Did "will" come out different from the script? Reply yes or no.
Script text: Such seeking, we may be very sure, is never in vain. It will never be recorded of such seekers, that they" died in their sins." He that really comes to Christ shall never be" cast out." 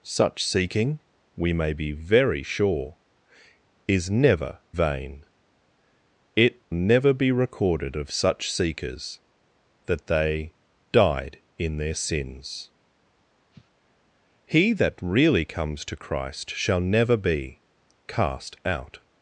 yes